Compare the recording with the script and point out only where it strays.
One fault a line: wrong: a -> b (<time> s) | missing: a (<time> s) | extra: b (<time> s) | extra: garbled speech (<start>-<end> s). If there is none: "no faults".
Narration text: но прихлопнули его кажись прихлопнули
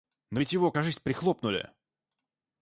wrong: прихлопнули -> ведь (0.4 s)